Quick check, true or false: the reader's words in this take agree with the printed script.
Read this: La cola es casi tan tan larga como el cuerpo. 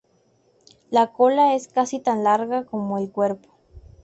false